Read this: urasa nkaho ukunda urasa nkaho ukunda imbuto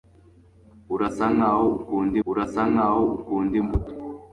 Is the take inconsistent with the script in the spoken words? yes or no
no